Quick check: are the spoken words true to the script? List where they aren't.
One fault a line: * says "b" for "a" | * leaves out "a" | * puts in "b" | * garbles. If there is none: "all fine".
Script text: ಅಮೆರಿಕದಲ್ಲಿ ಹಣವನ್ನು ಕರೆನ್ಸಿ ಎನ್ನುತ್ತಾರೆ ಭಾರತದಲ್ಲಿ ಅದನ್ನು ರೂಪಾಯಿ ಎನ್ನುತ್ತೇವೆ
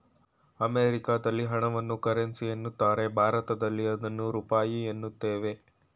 all fine